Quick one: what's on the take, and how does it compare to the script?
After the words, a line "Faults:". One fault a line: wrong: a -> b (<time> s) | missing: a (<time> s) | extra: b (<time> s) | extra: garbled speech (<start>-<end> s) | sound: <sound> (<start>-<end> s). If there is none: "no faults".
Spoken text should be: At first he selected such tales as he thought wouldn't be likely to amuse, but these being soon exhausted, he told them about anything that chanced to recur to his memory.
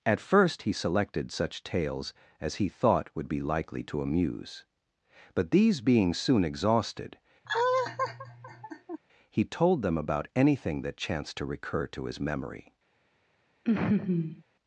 At first he selected such tales as he thought would be likely to amuse, but these being soon exhausted, he told them about anything that chanced to recur to his memory.
Faults:
wrong: wouldn't -> would (3.1 s)
sound: laugh (7.4-9.0 s)
sound: laugh (13.7-14.4 s)